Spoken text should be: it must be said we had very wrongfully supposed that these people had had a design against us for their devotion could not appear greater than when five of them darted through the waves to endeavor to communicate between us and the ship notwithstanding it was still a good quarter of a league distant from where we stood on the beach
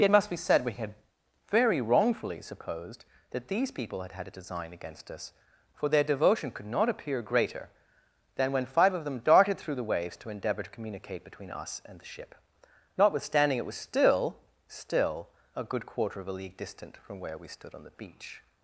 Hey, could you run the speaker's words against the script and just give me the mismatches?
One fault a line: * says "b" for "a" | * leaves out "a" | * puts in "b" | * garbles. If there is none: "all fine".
* puts in "still"